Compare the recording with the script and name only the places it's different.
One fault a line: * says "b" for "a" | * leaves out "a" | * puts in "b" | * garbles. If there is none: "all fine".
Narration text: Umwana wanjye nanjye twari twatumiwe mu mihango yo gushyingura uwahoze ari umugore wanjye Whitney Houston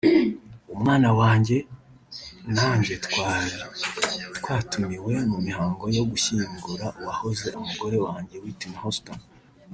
* leaves out "ari"